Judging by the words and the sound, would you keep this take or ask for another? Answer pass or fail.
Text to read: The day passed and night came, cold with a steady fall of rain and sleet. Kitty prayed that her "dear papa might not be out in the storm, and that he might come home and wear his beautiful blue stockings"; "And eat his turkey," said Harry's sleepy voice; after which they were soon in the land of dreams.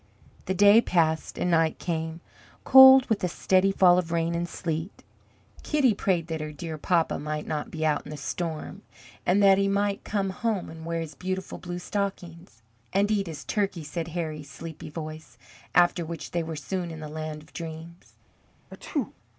fail